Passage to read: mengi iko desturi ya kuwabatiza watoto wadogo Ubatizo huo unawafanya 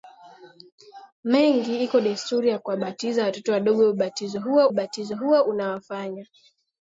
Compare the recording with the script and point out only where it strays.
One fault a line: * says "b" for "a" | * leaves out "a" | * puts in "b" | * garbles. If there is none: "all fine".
* puts in "Ubatizo huo"